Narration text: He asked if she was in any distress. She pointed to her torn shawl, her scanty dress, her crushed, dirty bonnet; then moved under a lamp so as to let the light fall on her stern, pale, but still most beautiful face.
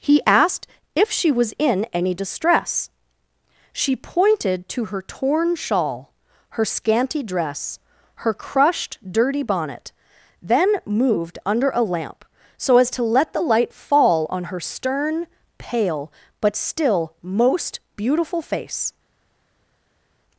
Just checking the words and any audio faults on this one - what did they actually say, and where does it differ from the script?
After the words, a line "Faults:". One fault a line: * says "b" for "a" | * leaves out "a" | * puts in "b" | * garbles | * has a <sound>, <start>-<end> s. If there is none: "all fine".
He asked if she was in any distress. She pointed to her torn shawl, her scanty dress, her crushed, dirty bonnet; then moved under a lamp so as to let the light fall on her stern, pale, but still most beautiful face.
Faults:
all fine